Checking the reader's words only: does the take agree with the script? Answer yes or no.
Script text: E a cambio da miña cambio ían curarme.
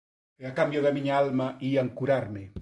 no